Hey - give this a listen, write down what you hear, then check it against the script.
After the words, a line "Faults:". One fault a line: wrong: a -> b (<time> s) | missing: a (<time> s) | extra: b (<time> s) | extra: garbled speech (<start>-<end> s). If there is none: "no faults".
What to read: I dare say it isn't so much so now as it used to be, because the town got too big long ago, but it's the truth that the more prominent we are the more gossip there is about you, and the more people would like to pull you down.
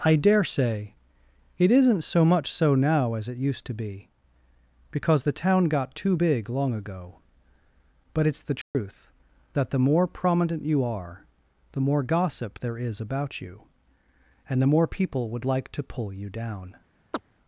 I dare say it isn't so much so now as it used to be, because the town got too big long ago, but it's the truth that the more prominent you are the more gossip there is about you, and the more people would like to pull you down.
Faults:
wrong: we -> you (10.6 s)